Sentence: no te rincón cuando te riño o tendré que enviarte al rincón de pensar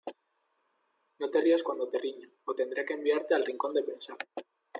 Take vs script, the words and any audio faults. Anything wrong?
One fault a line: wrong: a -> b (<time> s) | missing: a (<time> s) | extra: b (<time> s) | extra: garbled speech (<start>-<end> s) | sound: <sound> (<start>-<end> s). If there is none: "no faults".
wrong: rincón -> rías (1.4 s)